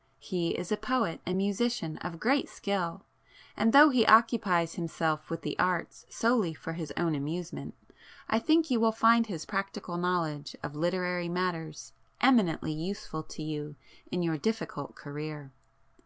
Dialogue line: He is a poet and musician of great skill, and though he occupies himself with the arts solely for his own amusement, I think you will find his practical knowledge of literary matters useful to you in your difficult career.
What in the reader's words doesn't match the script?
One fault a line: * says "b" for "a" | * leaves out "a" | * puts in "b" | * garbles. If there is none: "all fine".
* puts in "eminently"